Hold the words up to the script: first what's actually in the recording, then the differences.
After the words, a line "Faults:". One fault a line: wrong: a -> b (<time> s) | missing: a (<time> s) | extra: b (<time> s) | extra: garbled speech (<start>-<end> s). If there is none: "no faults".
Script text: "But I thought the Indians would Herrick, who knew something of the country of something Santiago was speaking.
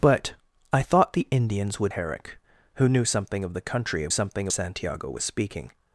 "But I thought the Indians would Herrick, who knew something of the country of something Santiago was speaking.
Faults:
no faults